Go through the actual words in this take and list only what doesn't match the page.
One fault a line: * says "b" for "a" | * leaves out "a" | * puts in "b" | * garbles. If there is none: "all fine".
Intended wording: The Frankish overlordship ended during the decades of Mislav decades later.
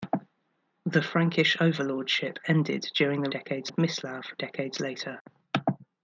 all fine